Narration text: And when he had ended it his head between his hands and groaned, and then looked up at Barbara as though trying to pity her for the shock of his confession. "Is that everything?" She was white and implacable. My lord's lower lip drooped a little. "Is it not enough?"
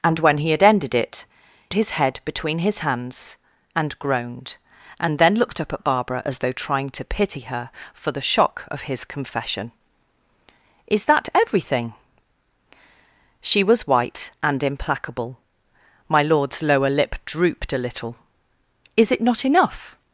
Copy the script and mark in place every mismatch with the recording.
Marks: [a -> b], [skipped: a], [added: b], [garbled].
And when he had ended it his head between his hands and groaned, and then looked up at Barbara as though trying to pity her for the shock of his confession. "Is that everything?" She was white and implacable. My lord's lower lip drooped a little. "Is it not enough?"